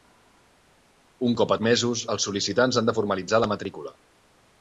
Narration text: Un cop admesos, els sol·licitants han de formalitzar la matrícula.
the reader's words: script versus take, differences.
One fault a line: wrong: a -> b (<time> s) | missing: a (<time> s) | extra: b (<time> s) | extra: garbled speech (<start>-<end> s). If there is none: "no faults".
no faults